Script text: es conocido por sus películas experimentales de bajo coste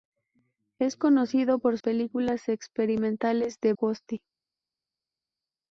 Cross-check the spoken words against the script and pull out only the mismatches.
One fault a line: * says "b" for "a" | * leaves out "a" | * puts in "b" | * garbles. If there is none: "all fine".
* leaves out "sus"
* leaves out "bajo"